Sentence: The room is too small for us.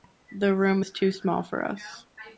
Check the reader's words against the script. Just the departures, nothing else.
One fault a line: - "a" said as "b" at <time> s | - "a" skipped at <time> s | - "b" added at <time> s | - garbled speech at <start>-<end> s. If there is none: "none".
none